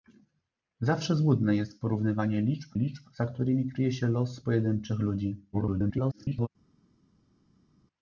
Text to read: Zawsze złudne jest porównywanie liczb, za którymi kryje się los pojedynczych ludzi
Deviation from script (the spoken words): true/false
true